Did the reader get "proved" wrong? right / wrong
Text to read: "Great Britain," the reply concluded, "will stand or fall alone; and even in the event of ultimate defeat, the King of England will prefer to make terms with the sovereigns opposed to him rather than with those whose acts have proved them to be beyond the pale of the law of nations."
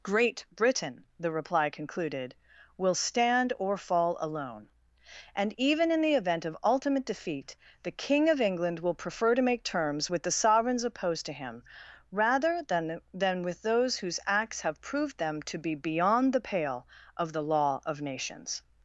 right